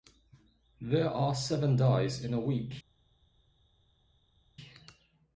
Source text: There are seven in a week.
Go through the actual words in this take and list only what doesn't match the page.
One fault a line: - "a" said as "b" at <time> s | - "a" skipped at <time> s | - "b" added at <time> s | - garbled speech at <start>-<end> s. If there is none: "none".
- "days" added at 1.8 s